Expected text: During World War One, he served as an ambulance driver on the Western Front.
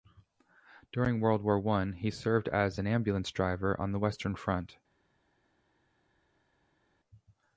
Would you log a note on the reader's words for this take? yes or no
no